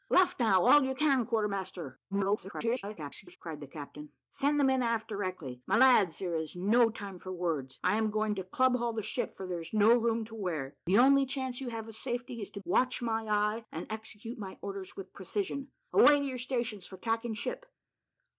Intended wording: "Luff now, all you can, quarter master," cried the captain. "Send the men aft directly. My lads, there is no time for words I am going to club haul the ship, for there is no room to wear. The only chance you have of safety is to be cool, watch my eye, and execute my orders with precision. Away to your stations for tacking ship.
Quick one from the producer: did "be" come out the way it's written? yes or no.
no